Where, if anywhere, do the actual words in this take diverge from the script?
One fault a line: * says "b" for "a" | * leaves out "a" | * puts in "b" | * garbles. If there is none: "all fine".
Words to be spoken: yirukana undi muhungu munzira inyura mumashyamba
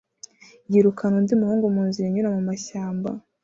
all fine